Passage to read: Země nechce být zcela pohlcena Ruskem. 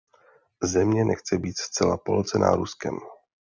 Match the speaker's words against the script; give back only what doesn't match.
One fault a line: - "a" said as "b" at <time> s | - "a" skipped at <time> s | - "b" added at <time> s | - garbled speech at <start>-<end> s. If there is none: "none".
none